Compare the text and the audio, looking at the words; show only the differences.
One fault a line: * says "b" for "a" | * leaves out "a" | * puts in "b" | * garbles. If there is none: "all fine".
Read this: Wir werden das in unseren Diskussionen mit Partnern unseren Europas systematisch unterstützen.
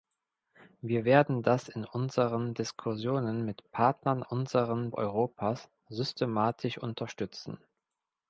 all fine